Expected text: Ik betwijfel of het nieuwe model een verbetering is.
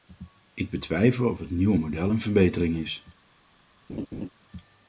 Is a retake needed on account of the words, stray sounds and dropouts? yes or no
yes